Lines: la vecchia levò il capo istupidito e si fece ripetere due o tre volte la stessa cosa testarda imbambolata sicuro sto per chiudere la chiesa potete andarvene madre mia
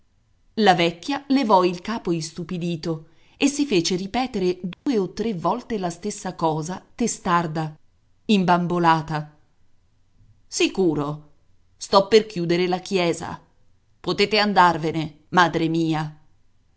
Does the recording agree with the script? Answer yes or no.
yes